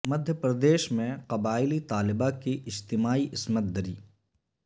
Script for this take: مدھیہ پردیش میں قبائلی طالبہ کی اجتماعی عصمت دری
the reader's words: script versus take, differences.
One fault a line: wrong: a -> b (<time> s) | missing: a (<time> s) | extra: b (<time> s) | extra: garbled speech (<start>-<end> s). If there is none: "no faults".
no faults